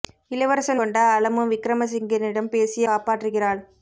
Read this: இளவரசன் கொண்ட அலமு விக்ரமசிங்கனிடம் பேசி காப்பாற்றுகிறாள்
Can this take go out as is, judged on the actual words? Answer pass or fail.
pass